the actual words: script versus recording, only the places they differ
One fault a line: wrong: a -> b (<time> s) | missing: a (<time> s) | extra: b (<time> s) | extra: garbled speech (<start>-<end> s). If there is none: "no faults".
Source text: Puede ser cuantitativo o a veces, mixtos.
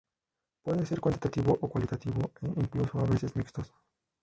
extra: cualitativo e incluso (1.7 s)